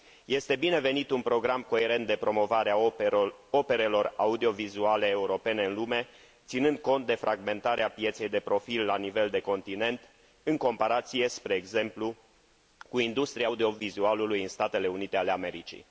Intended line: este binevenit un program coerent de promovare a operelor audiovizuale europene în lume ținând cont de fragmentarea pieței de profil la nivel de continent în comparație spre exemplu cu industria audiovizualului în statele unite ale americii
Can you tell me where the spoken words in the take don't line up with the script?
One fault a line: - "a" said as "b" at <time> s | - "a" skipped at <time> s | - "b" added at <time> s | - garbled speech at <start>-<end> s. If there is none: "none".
none